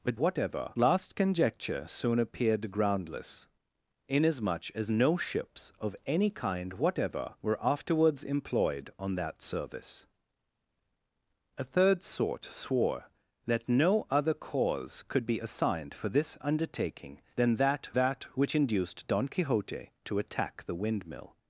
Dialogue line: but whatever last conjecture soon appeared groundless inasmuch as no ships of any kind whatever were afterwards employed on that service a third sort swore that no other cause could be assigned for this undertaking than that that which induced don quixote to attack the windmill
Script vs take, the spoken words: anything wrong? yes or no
no